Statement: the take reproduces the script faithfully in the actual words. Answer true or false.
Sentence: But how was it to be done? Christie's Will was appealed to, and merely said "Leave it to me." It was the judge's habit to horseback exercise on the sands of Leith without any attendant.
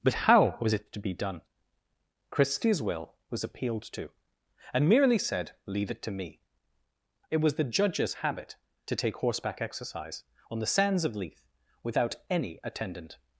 false